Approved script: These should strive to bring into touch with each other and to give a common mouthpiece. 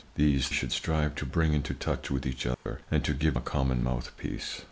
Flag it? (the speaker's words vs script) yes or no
no